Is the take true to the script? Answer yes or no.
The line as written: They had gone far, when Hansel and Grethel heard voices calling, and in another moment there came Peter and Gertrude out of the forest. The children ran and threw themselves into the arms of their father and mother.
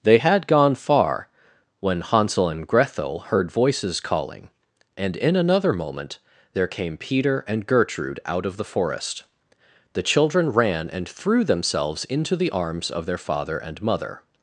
yes